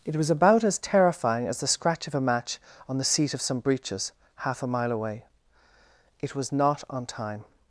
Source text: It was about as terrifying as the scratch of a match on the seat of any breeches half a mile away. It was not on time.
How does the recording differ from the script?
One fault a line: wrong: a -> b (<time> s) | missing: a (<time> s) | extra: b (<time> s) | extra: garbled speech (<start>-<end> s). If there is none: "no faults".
wrong: any -> some (3.4 s)